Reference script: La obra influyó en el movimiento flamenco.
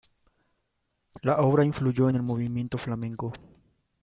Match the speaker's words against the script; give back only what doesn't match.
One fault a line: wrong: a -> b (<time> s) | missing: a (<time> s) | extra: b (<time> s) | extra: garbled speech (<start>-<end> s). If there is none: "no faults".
no faults